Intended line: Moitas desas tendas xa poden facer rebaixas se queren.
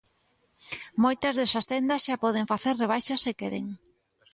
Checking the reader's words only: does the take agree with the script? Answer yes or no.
yes